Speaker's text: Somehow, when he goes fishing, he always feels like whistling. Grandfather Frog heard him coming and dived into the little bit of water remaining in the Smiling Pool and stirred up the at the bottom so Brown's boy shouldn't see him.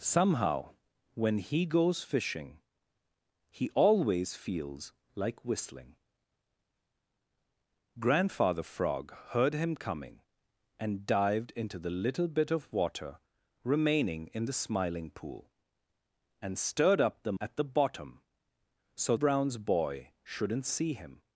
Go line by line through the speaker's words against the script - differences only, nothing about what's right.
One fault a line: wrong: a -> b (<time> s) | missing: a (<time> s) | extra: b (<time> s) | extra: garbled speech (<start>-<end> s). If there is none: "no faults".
no faults